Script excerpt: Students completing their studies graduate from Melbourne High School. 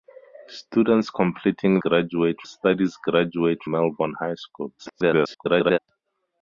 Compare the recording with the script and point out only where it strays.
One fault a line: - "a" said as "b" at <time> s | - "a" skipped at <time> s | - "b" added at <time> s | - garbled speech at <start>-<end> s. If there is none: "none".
- "their" said as "graduate" at 1.8 s
- "from" skipped at 3.6 s
- garbled speech at 4.8-5.8 s